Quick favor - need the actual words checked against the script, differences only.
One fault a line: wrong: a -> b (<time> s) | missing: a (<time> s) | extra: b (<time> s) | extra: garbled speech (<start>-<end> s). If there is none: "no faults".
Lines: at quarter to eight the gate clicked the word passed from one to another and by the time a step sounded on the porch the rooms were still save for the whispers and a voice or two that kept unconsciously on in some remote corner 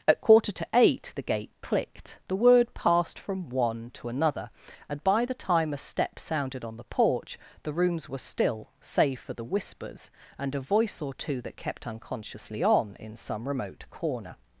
no faults